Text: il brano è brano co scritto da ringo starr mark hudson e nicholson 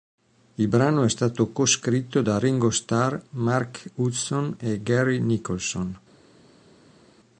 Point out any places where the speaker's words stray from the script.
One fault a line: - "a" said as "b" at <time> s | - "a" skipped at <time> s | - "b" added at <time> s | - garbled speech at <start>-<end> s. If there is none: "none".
- "brano" said as "stato" at 1.1 s
- "gary" added at 4.8 s